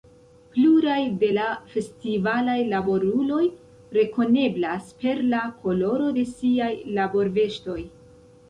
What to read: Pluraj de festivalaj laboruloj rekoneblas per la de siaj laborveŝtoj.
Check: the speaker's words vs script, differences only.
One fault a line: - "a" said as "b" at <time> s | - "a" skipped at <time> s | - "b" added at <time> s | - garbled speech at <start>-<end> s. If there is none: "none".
- "la" added at 1.4 s
- "koloro" added at 5.7 s